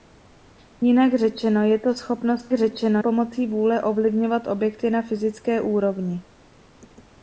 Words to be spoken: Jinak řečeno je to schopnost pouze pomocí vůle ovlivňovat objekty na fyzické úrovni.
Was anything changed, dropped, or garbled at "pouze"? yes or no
yes